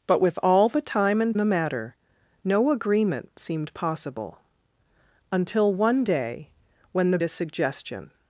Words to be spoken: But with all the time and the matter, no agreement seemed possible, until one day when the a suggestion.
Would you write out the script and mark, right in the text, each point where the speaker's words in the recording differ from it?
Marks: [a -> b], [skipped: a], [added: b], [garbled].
But with all the time and the matter, no agreement seemed possible, until one day when the a suggestion.